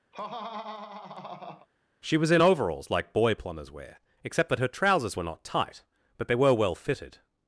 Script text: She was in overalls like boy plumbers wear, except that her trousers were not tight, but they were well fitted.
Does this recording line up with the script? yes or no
yes